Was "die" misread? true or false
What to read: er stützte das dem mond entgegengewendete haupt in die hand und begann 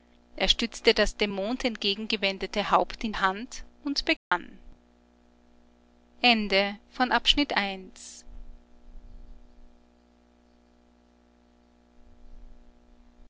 true